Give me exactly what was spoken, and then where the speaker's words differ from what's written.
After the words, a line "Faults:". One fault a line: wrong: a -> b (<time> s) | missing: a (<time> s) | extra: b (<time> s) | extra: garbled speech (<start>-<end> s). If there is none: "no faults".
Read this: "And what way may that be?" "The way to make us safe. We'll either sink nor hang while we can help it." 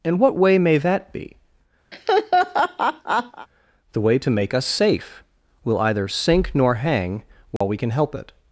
"And what way may that be?" "The way to make us safe. We'll either sink nor hang while we can help it."
Faults:
no faults